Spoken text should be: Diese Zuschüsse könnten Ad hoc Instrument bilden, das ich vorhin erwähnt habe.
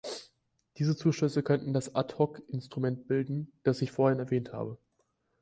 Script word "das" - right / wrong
right